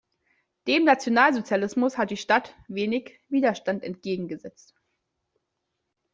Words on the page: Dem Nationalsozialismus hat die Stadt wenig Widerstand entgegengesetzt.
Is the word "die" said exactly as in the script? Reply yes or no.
yes